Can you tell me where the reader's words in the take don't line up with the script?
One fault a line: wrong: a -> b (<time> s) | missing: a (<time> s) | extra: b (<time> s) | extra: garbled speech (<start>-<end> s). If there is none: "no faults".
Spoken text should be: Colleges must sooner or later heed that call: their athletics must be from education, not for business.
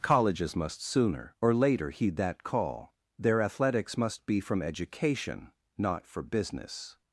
no faults